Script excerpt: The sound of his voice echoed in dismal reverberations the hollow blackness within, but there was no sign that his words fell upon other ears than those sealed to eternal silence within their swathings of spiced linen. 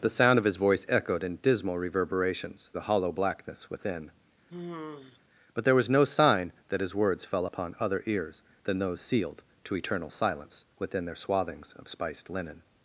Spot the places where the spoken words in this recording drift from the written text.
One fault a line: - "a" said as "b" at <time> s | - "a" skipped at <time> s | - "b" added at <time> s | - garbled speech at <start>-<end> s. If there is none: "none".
none